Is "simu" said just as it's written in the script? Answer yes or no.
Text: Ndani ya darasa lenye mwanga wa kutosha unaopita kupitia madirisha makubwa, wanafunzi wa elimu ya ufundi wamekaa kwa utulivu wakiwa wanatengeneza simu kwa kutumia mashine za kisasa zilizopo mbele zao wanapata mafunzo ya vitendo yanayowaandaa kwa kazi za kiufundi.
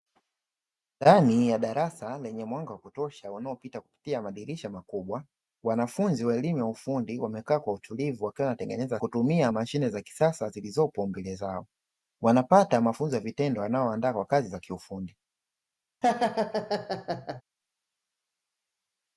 no